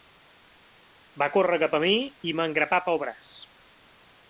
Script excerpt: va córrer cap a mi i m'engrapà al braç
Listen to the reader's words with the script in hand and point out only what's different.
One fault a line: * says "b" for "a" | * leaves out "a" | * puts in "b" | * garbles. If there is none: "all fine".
* says "pel" for "al"